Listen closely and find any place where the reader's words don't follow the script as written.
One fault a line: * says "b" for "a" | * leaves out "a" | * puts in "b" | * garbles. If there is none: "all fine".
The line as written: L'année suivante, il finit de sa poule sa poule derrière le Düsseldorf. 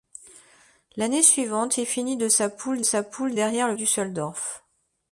all fine